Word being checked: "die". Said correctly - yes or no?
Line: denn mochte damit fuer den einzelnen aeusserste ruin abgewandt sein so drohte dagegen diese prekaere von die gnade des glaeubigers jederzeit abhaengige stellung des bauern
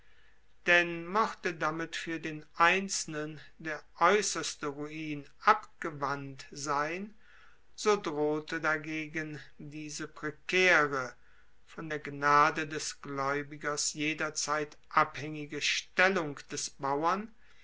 no